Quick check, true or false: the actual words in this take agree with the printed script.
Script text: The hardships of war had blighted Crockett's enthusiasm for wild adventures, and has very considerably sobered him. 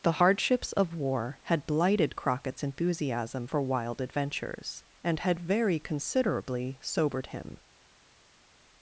false